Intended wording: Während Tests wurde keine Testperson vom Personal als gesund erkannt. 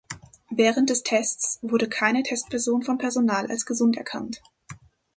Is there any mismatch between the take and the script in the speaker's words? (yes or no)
yes